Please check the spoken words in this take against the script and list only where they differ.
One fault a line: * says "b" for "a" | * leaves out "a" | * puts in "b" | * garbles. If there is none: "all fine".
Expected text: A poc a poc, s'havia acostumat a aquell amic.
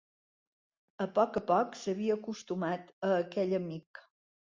all fine